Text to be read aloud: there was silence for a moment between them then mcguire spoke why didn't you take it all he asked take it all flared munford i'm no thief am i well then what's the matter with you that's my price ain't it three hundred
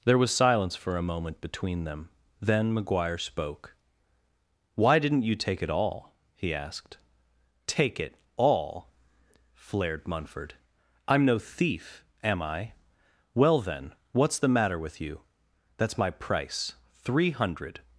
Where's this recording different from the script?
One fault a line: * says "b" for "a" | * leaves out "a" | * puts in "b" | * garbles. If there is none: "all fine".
* leaves out "ain't it"